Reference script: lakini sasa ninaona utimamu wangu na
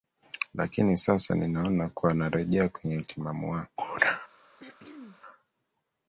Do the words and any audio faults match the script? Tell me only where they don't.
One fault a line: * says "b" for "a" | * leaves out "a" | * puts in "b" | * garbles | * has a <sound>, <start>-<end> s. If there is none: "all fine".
* puts in "kuwa narejea kwenye"
* has a throat clearing, 4.6-5.2 s